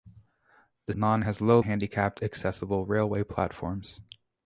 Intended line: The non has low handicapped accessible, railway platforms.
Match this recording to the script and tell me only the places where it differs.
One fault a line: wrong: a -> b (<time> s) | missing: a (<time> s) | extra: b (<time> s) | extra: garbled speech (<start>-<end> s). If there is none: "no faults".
no faults